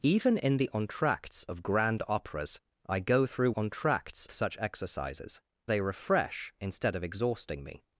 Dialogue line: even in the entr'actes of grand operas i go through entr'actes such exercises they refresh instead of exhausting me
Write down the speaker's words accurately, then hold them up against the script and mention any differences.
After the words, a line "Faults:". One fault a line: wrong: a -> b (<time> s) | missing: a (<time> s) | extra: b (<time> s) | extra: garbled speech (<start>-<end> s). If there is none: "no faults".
even in the entr'actes of grand operas i go through entr'actes such exercises they refresh instead of exhausting me
Faults:
no faults